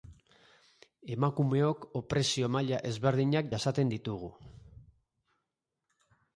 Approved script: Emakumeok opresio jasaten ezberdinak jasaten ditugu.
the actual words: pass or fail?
fail